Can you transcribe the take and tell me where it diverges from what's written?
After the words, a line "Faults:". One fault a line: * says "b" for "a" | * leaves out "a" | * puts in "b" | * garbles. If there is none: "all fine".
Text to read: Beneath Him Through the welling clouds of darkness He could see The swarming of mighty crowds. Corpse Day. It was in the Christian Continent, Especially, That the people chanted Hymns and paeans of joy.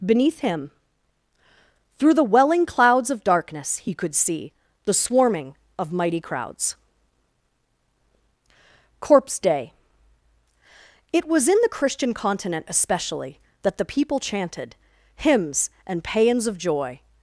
Beneath Him Through the welling clouds of darkness He could see The swarming of mighty crowds. Corpse Day. It was in the Christian Continent, Especially, That the people chanted Hymns and paeans of joy.
Faults:
all fine